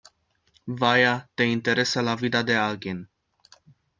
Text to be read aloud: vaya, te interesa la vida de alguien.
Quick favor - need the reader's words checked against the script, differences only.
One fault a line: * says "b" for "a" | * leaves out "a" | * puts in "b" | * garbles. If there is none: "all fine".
all fine